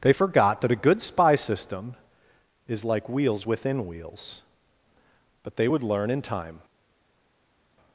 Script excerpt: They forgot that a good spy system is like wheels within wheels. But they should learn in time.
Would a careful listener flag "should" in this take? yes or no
yes